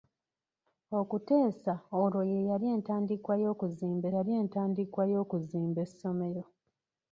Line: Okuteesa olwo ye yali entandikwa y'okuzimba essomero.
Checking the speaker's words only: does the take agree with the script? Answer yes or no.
no